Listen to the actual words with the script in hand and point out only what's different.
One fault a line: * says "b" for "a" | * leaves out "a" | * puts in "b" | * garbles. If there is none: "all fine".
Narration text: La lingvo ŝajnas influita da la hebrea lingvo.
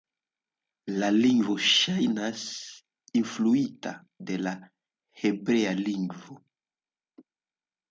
* says "de" for "da"